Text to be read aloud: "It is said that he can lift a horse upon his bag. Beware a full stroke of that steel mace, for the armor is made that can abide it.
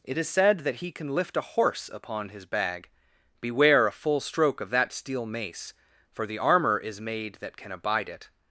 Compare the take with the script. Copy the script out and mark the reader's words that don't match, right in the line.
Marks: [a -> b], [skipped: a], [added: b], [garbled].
"It is said that he can lift a horse upon his bag. Beware a full stroke of that steel mace, for the armor is made that can abide it.